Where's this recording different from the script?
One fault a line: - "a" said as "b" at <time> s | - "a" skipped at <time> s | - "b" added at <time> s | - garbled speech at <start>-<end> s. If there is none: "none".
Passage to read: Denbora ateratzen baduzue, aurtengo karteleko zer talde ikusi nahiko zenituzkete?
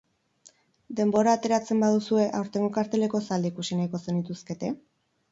- "zer" skipped at 3.2 s